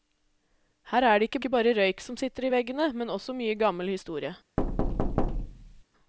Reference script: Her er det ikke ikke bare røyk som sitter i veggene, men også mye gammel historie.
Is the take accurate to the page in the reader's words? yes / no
yes